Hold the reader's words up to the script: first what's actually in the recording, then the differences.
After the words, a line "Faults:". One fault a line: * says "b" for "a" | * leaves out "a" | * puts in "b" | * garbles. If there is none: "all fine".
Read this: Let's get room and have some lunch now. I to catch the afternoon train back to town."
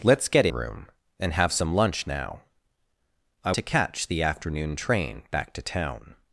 Let's get room and have some lunch now. I to catch the afternoon train back to town."
Faults:
all fine